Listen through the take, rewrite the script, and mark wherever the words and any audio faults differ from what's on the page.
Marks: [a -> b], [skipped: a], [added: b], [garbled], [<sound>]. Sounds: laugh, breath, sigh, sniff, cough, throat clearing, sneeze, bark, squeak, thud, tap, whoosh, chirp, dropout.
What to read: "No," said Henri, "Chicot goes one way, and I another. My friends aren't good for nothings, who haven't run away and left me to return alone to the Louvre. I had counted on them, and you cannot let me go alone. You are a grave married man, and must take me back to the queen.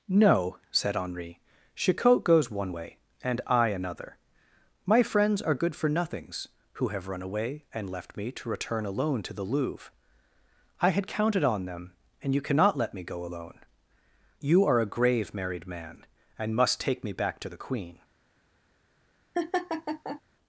"No," said Henri, "Chicot goes one way, and I another. My friends [aren't -> are] good for nothings, who [haven't -> have] run away and left me to return alone to the Louvre. I had counted on them, and you cannot let me go alone. You are a grave married man, and must take me back to the queen. [laugh]